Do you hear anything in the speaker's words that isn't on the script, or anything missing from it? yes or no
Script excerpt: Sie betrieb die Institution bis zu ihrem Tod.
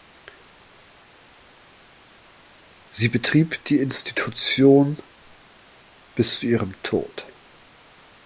no